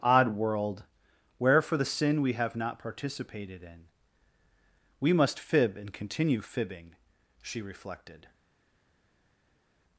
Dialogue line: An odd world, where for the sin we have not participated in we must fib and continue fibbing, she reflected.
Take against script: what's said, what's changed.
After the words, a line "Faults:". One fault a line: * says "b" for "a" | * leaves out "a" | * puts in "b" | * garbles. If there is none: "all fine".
odd world, where for the sin we have not participated in we must fib and continue fibbing, she reflected.
Faults:
* leaves out "An"